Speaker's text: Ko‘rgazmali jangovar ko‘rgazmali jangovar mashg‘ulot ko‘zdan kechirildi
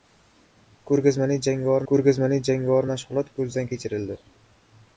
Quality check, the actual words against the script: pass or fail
pass